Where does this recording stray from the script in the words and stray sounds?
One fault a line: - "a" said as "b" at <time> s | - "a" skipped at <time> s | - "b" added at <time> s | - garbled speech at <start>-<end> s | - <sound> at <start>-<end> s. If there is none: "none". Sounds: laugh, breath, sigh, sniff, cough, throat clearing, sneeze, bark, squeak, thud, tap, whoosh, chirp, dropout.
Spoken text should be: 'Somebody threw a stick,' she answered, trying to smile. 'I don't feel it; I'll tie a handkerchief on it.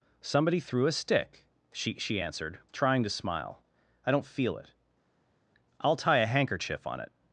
- "she" added at 2.0 s